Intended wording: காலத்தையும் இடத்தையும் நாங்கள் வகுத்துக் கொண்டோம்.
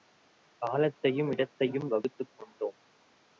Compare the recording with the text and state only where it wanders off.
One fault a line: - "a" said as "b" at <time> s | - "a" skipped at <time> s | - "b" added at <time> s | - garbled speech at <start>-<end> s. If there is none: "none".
- "நாங்கள்" skipped at 1.9 s